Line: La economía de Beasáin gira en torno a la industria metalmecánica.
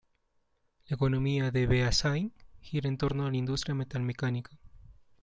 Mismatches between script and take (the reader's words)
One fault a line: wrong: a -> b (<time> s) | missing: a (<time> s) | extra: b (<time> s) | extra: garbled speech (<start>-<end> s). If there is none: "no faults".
no faults